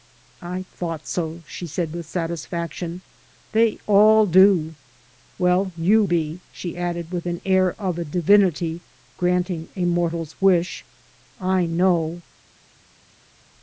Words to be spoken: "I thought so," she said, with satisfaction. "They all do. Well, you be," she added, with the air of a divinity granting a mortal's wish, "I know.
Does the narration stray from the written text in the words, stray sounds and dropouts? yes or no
no